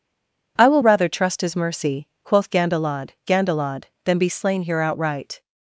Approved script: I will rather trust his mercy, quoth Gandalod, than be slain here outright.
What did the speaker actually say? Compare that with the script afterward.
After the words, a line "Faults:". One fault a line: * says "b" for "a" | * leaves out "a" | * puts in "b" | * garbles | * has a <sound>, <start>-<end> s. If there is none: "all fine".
I will rather trust his mercy, quoth Gandalod Gandalod, than be slain here outright.
Faults:
* puts in "Gandalod"